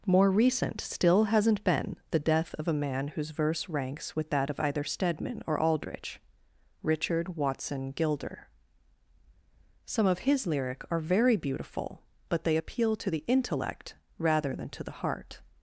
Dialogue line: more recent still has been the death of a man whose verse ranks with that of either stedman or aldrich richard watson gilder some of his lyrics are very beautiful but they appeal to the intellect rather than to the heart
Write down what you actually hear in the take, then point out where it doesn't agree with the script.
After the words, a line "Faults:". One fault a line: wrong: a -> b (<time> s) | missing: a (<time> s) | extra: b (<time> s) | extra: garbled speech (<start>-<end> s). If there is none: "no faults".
more recent still hasn't been the death of a man whose verse ranks with that of either stedman or aldrich richard watson gilder some of his lyric are very beautiful but they appeal to the intellect rather than to the heart
Faults:
wrong: has -> hasn't (1.2 s)
wrong: lyrics -> lyric (10.5 s)